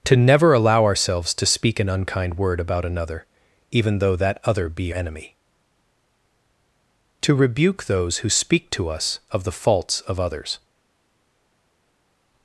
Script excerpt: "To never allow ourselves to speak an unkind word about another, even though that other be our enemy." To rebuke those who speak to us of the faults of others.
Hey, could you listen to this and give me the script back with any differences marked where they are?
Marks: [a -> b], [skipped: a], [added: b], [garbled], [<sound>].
"To never allow ourselves to speak an unkind word about another, even though that other be [skipped: our] enemy." To rebuke those who speak to us of the faults of others.